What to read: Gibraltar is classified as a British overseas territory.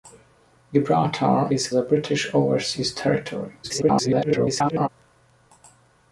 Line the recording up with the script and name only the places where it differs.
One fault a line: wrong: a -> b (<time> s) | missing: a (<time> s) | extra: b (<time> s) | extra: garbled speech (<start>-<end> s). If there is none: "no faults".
missing: classified as (1.7 s)
extra: garbled speech (3.6-4.9 s)